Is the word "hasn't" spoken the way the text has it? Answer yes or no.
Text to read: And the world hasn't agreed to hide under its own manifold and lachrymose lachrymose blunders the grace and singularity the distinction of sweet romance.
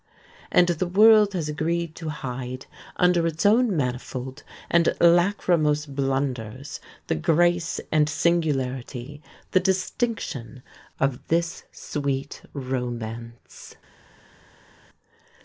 no